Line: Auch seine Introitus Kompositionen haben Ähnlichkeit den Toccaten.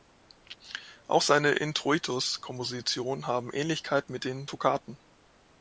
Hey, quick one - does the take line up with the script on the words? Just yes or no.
no